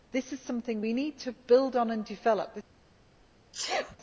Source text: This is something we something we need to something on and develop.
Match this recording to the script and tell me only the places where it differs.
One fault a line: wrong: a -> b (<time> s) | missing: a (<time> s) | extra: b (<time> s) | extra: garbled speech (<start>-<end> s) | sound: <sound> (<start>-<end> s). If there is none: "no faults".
missing: something we (0.9 s)
wrong: something -> build (1.3 s)
sound: sneeze (3.5-4.0 s)